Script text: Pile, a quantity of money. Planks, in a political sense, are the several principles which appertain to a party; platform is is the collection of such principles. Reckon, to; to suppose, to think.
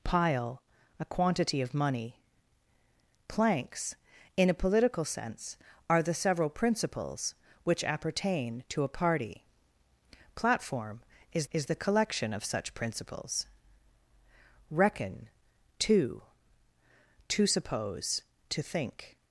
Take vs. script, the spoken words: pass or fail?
pass